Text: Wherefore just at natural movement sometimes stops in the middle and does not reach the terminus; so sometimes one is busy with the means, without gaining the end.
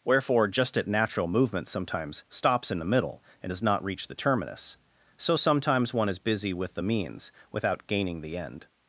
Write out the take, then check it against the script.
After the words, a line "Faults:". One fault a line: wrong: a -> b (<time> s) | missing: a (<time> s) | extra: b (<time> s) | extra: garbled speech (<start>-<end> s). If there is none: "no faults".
Wherefore just at natural movement sometimes stops in the middle and does not reach the terminus; so sometimes one is busy with the means, without gaining the end.
Faults:
no faults